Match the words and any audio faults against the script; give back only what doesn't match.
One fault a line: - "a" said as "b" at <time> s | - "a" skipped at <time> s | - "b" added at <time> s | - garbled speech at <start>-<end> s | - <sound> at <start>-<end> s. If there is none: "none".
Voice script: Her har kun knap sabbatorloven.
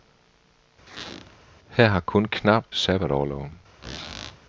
- squeak at 0.9-1.4 s
- squeak at 3.8-4.4 s